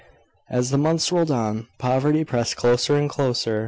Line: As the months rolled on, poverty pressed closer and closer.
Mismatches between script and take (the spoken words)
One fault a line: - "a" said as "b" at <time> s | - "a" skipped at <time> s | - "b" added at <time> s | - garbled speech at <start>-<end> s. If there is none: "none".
none